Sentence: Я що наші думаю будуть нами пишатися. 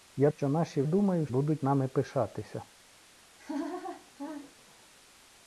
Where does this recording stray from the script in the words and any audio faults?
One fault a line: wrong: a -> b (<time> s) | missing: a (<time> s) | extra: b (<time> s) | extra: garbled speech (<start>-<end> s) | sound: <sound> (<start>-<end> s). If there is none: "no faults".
sound: laugh (3.4-4.9 s)